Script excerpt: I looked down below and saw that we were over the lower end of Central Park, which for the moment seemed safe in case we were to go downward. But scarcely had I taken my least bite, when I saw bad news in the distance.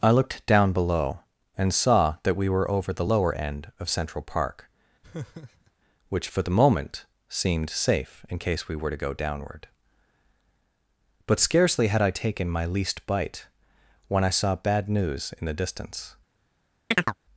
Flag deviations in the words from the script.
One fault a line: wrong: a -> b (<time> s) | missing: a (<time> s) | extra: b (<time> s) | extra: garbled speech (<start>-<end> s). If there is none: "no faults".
no faults